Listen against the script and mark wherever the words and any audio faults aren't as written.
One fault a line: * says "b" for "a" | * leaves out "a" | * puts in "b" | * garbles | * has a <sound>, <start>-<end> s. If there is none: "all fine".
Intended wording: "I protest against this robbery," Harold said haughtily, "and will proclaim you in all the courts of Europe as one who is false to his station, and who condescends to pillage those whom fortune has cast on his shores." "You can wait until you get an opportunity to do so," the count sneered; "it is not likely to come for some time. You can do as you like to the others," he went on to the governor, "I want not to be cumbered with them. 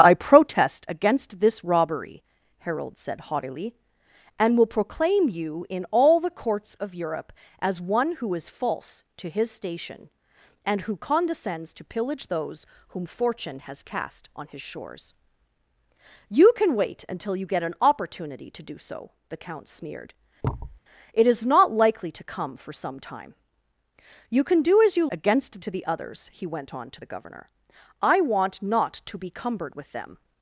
* has a thud, 20.4-20.8 s
* says "against" for "like"